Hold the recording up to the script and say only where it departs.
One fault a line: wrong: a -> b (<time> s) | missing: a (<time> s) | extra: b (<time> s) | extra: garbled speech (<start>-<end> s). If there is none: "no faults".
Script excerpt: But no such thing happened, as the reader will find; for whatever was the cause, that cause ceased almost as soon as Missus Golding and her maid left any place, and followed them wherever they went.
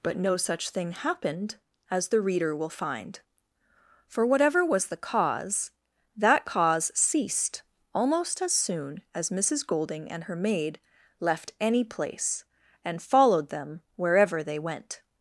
no faults